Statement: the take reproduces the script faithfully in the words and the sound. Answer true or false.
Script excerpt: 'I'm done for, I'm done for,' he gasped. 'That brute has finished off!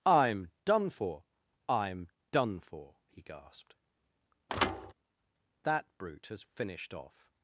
false